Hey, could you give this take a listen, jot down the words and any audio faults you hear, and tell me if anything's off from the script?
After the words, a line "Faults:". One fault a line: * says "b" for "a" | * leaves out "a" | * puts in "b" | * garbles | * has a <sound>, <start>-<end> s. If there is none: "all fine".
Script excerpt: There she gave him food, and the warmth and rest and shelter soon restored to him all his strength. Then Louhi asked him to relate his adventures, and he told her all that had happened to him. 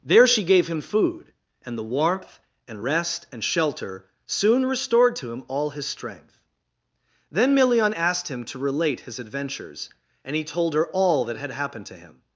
There she gave him food, and the warmth and rest and shelter soon restored to him all his strength. Then Milion asked him to relate his adventures, and he told her all that had happened to him.
Faults:
* says "Milion" for "Louhi"